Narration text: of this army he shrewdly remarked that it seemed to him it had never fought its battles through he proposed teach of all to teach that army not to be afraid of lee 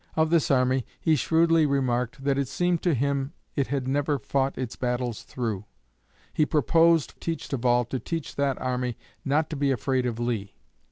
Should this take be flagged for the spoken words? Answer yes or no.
no